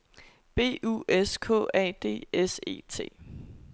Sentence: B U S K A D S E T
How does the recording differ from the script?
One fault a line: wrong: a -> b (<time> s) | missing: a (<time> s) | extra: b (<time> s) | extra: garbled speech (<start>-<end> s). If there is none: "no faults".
no faults